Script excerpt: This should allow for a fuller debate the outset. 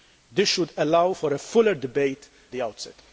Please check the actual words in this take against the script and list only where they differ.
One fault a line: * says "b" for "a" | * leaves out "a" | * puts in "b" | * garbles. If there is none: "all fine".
all fine